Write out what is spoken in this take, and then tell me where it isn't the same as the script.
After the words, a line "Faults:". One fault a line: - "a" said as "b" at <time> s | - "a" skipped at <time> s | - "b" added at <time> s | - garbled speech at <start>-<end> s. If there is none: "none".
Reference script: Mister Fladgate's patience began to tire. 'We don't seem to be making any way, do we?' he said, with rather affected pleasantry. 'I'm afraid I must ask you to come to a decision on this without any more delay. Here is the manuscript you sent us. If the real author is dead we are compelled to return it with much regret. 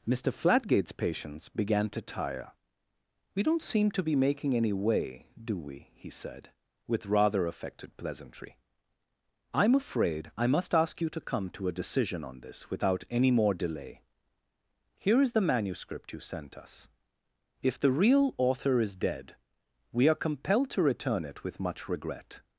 Mister Fladgate's patience began to tire. 'We don't seem to be making any way, do we?' he said, with rather affected pleasantry. 'I'm afraid I must ask you to come to a decision on this without any more delay. Here is the manuscript you sent us. If the real author is dead we are compelled to return it with much regret.
Faults:
none